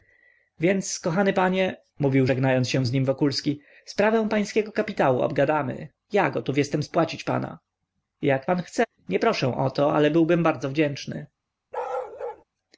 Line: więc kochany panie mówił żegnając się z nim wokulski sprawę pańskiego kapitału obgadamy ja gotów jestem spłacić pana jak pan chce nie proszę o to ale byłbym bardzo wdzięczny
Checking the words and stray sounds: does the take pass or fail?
fail